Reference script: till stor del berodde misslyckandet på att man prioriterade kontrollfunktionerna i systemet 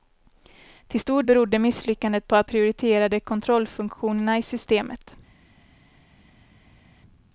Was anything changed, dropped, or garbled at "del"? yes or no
yes